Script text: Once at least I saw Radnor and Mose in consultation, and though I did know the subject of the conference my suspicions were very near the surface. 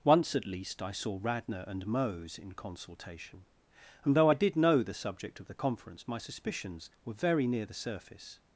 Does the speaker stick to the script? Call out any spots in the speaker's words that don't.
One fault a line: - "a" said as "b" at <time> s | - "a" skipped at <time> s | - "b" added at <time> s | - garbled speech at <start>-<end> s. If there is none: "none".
none